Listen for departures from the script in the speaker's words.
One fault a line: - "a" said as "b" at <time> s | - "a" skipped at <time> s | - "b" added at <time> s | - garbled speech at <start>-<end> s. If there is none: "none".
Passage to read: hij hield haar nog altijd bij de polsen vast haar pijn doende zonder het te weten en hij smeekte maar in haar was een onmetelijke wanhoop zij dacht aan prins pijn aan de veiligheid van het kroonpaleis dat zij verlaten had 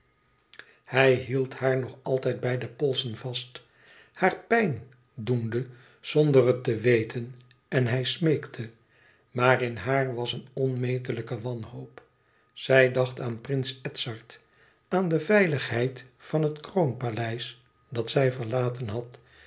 - "pijn" said as "edzard" at 13.8 s